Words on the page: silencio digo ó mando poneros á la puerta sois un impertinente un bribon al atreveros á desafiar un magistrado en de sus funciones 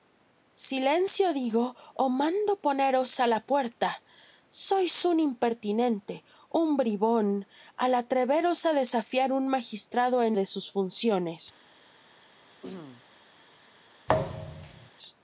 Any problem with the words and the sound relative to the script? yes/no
yes